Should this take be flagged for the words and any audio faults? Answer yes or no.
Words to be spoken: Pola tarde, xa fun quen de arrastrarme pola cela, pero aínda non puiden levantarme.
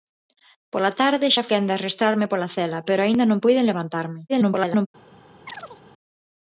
yes